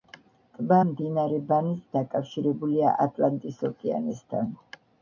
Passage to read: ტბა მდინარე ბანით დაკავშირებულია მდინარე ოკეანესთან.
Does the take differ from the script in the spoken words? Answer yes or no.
yes